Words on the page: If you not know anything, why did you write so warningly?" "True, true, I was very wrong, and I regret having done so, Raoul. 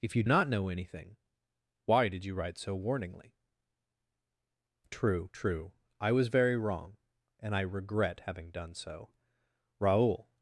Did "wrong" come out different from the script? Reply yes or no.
no